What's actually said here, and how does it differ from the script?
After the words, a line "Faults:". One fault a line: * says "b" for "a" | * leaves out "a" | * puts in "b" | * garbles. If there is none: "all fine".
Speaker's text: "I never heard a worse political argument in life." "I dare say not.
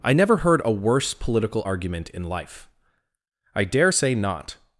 "I never heard a worse political argument in life." "I dare say not.
Faults:
all fine